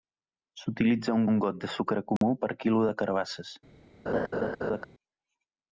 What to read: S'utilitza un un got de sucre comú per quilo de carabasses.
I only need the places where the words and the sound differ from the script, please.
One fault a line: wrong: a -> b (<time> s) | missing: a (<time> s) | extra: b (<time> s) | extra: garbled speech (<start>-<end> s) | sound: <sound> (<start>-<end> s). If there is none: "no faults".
sound: dropout (2.2-2.2 s)
sound: laugh (4.1-4.9 s)